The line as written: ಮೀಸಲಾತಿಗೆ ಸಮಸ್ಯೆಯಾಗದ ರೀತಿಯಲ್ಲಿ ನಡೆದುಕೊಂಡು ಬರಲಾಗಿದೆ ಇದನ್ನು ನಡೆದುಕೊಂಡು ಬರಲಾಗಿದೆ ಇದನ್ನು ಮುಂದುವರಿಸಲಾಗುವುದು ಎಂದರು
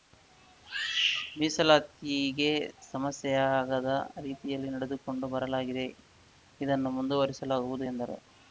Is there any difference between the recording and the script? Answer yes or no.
yes